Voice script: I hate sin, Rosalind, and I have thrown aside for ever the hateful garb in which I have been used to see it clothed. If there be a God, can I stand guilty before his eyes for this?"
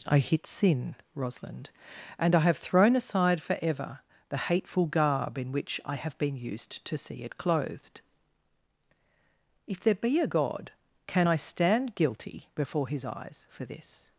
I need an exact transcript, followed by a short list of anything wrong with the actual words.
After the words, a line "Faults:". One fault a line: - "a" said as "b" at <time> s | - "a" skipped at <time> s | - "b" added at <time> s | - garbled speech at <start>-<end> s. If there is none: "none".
I hit sin, Rosalind, and I have thrown aside for ever the hateful garb in which I have been used to see it clothed. If there be a God, can I stand guilty before his eyes for this?"
Faults:
- "hate" said as "hit" at 0.2 s